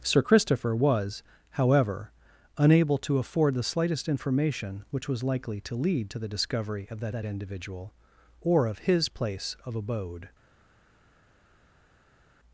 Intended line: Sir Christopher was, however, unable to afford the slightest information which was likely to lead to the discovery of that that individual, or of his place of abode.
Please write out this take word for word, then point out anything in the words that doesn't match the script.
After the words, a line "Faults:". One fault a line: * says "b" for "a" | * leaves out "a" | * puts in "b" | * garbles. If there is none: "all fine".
Sir Christopher was, however, unable to afford the slightest information which was likely to lead to the discovery of that that individual, or of his place of abode.
Faults:
all fine